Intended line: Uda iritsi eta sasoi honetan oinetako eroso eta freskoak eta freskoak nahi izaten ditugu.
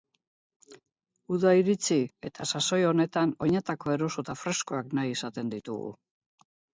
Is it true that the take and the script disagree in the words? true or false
true